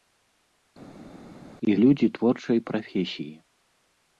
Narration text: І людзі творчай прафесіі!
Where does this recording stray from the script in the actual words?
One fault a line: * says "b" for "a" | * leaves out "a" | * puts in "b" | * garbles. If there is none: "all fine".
all fine